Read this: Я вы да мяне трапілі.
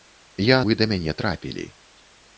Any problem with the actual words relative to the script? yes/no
no